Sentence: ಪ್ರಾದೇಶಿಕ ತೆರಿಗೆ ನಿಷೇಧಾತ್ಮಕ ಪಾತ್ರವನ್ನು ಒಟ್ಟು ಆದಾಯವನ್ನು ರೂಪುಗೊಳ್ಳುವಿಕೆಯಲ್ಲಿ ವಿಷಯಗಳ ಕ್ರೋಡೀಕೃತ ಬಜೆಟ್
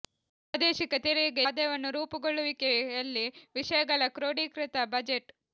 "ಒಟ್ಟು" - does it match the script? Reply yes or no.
no